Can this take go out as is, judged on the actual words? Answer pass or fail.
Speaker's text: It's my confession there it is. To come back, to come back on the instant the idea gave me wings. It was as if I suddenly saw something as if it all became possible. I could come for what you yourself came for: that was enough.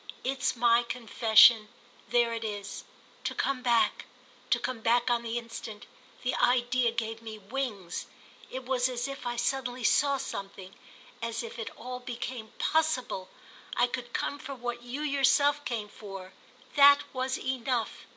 pass